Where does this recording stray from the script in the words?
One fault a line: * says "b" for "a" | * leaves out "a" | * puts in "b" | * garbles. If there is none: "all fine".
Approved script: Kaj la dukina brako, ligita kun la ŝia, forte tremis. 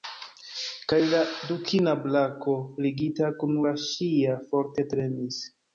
all fine